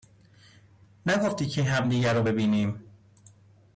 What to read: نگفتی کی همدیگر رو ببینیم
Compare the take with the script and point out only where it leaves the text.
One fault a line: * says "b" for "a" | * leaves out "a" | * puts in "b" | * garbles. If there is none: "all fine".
all fine